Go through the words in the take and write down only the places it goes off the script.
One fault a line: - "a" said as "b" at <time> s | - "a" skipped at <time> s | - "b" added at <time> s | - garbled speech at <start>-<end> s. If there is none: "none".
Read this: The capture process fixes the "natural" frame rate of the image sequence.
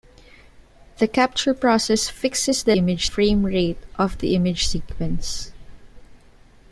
- "natural" said as "image" at 2.8 s